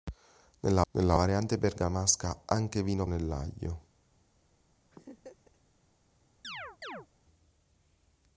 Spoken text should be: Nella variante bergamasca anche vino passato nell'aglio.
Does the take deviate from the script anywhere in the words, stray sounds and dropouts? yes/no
yes